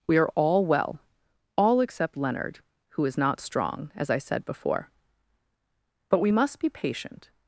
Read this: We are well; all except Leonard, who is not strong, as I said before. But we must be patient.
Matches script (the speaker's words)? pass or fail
fail